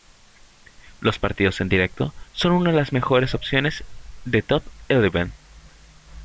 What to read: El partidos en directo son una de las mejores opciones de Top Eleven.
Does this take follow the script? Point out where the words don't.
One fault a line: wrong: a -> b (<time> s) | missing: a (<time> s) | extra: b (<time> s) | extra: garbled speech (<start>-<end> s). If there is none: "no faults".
wrong: El -> Los (1.0 s)